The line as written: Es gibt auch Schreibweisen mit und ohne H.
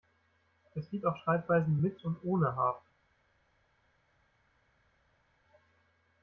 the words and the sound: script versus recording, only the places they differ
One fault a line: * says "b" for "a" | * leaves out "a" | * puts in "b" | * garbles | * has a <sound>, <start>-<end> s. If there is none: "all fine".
all fine